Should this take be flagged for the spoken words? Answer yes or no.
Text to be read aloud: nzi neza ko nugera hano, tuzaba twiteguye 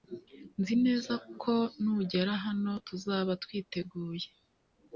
no